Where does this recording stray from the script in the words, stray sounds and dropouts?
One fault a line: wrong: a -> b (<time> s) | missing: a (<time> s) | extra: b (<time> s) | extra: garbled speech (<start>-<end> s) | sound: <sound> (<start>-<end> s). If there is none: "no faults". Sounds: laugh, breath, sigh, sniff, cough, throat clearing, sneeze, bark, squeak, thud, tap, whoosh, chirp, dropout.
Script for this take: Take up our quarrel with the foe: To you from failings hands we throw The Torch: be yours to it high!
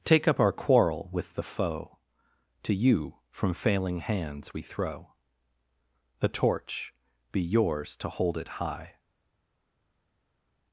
wrong: failings -> failing (3.5 s)
extra: hold (8.1 s)